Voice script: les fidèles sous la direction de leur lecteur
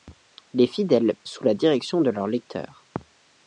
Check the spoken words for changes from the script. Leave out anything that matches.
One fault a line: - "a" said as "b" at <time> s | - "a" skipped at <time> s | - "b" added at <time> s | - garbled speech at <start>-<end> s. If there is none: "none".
none